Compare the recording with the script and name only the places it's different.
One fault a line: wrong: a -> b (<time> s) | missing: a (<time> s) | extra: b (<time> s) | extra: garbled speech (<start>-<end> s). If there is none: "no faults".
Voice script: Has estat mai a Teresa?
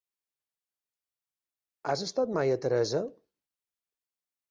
no faults